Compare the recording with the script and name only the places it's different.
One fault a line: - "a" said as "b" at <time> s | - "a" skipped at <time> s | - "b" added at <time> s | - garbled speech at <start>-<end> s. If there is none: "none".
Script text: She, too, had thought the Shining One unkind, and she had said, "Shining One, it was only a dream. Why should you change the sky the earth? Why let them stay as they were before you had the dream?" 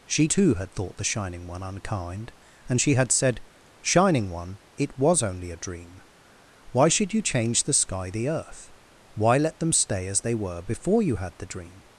none